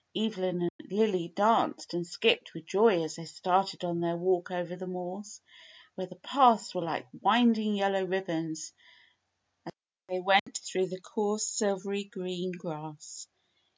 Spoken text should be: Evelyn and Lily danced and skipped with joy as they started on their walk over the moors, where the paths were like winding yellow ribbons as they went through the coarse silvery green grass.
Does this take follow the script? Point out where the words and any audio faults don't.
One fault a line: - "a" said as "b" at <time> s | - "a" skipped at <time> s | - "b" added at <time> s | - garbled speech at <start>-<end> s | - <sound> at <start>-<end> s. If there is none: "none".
- dropout at 0.7-0.8 s
- dropout at 10.4-10.5 s